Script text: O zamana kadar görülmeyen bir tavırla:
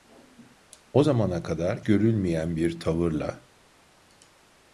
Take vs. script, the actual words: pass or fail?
pass